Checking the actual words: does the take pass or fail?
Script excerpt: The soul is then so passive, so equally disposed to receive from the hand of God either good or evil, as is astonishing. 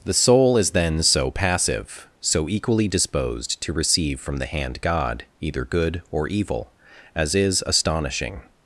fail